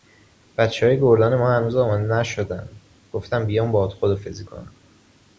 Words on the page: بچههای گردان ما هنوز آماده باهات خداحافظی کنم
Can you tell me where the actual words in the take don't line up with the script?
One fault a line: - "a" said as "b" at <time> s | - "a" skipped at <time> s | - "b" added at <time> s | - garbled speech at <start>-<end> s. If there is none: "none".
- "نشدن گفتم بیام" added at 2.0 s